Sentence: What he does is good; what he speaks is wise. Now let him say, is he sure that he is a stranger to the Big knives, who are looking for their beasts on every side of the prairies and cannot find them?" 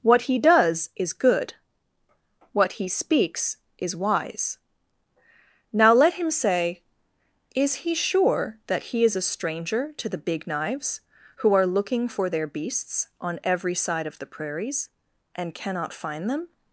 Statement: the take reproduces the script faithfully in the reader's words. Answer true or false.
true